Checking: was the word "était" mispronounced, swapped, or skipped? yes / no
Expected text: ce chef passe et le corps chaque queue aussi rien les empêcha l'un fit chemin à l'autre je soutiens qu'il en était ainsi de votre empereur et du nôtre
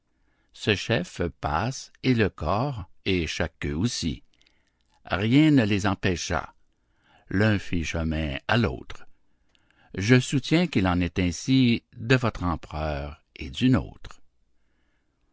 yes